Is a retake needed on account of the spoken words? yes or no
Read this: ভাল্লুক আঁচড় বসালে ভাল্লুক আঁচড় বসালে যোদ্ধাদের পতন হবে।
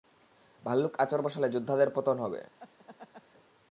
yes